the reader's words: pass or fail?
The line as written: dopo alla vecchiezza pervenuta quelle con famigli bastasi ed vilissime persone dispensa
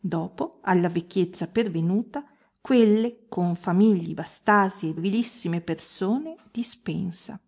pass